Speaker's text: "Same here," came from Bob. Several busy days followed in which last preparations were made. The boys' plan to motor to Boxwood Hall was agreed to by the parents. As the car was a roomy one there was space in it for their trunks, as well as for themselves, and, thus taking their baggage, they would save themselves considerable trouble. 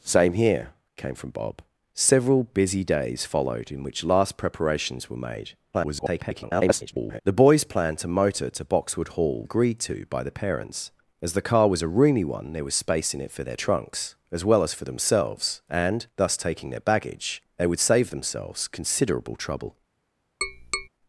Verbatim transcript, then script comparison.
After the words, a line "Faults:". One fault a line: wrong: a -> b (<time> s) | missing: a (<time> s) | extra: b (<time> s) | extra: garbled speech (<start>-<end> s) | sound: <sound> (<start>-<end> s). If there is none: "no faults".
"Same here," came from Bob. Several busy days followed in which last preparations were made. [garbled] The boys' plan to motor to Boxwood Hall agreed to by the parents. As the car was a roomy one there was space in it for their trunks, as well as for themselves, and, thus taking their baggage, they would save themselves considerable trouble.
Faults:
extra: garbled speech (5.7-7.2 s)
missing: was (9.4 s)
sound: tap (20.4-20.9 s)